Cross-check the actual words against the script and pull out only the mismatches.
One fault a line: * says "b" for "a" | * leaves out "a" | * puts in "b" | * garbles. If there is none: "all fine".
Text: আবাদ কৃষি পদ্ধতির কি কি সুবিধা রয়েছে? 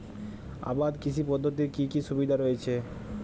all fine